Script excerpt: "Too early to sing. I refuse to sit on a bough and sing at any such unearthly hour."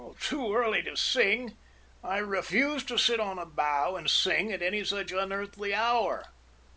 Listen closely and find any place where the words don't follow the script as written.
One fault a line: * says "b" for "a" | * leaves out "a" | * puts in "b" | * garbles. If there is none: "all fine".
all fine